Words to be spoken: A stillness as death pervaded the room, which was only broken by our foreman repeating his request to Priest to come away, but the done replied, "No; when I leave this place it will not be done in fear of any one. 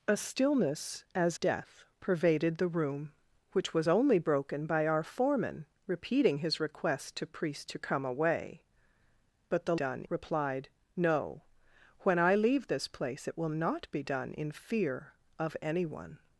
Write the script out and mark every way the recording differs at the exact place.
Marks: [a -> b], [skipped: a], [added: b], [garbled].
A stillness as death pervaded the room, which was only broken by our foreman repeating his request to Priest to come away, but the done replied, "No; when I leave this place it will not be done in fear of any one.